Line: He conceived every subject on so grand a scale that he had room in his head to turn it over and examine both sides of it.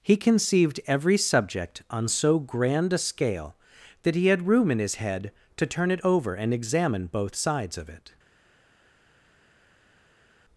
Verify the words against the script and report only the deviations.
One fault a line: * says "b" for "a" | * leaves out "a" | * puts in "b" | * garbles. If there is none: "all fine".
all fine